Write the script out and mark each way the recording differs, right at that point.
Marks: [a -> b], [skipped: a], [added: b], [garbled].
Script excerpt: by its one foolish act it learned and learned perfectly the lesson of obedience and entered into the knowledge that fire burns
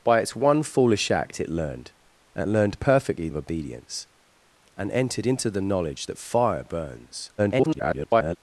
by its one foolish act it learned and learned perfectly [skipped: the lesson] of obedience and entered into the knowledge that fire burns [garbled]